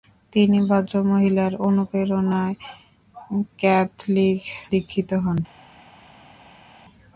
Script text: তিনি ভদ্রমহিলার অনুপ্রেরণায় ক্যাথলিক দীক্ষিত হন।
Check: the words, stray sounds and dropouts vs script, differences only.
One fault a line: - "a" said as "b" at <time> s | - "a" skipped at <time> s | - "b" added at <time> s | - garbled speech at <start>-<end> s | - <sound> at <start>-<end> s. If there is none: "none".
none